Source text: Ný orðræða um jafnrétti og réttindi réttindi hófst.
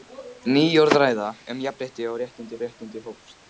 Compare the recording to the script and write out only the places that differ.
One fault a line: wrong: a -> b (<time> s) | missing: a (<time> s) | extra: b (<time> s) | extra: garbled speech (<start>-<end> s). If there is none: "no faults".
no faults